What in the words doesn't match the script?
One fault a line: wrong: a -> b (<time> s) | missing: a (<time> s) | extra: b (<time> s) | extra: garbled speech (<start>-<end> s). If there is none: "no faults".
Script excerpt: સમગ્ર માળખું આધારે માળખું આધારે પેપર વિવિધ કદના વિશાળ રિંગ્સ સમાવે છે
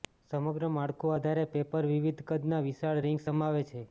missing: માળખું આધારે (1.4 s)